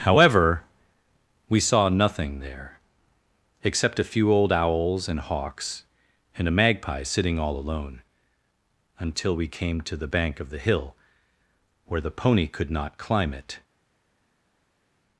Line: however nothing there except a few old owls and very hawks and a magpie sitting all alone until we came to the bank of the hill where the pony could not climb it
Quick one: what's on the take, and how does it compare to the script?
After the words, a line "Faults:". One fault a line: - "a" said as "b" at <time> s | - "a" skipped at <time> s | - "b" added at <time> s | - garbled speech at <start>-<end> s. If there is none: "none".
however we saw nothing there except a few old owls and hawks and a magpie sitting all alone until we came to the bank of the hill where the pony could not climb it
Faults:
- "we saw" added at 1.5 s
- "very" skipped at 5.2 s